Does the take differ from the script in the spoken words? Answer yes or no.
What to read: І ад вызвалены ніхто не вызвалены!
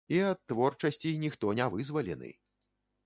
yes